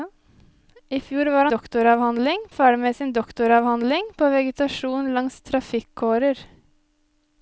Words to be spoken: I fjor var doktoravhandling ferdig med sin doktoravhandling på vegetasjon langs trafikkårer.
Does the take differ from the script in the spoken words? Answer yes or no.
no